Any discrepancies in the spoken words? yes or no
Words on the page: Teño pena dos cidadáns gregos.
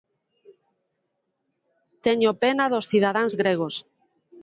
no